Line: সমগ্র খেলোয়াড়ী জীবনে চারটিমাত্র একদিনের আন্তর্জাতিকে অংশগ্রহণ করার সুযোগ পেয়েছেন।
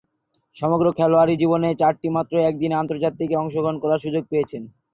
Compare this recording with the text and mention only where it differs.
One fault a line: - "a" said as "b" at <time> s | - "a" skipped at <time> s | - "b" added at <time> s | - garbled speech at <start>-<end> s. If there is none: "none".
none